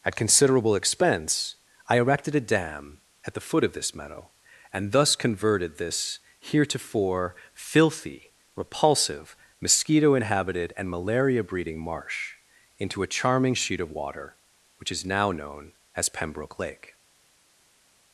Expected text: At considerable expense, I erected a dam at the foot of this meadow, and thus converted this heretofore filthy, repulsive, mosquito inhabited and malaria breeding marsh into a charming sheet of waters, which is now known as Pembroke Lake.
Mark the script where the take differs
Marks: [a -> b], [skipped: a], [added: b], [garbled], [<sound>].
At considerable expense, I erected a dam at the foot of this meadow, and thus converted this heretofore filthy, repulsive, mosquito inhabited and malaria breeding marsh into a charming sheet of [waters, -> water] which is now known as Pembroke Lake.